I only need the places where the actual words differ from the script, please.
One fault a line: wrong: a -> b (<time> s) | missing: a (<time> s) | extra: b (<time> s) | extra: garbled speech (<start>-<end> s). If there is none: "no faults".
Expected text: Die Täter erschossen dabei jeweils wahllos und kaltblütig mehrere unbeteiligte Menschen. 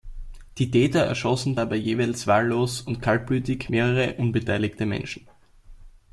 no faults